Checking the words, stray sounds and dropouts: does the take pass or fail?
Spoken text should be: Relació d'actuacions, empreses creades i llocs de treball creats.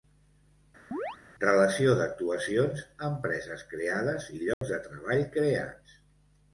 fail